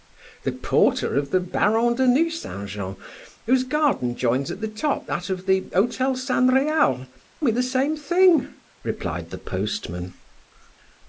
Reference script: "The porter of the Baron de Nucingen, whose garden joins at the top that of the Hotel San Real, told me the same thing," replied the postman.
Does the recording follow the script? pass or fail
fail